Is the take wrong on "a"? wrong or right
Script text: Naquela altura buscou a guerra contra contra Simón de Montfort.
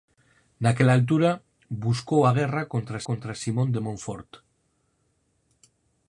right